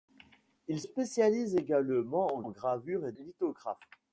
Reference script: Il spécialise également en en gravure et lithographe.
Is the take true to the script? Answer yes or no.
yes